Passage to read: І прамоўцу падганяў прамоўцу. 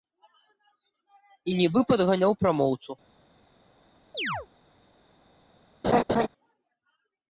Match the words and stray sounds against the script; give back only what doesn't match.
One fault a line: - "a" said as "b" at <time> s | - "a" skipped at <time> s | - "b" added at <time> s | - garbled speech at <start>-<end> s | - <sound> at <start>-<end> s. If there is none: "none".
- "прамоўцу" said as "нібы" at 1.6 s
- chirp at 4.1-4.5 s
- laugh at 5.8-6.3 s